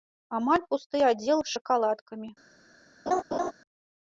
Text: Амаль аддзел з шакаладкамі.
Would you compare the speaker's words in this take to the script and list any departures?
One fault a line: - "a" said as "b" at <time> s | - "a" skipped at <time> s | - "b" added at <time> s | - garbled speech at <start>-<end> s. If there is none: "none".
- "пусты" added at 0.7 s